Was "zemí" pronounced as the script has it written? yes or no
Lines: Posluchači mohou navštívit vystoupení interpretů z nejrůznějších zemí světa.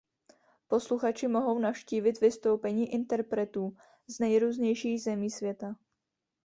yes